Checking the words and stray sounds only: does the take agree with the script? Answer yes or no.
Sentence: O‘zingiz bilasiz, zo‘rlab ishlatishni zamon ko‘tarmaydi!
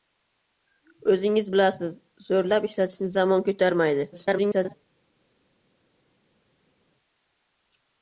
no